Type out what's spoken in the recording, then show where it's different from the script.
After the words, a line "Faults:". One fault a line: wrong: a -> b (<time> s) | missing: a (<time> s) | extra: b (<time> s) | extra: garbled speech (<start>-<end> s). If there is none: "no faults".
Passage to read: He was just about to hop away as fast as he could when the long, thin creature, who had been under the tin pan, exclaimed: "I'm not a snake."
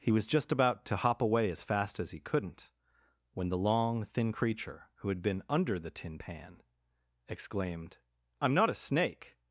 He was just about to hop away as fast as he couldn't when the long, thin creature, who had been under the tin pan, exclaimed: "I'm not a snake."
Faults:
wrong: could -> couldn't (2.2 s)